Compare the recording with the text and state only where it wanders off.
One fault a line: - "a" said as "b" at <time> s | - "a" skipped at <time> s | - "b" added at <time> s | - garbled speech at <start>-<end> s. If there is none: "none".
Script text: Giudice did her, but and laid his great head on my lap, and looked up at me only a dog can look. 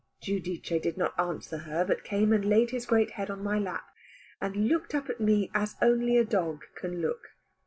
- "not answer" added at 1.0 s
- "came" added at 2.0 s
- "as" added at 5.5 s